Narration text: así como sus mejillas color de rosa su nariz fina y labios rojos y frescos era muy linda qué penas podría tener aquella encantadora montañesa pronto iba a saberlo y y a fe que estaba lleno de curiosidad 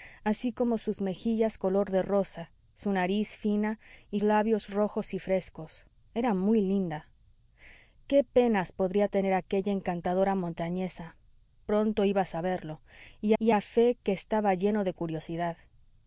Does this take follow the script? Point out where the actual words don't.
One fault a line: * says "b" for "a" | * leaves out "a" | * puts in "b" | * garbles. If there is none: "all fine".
all fine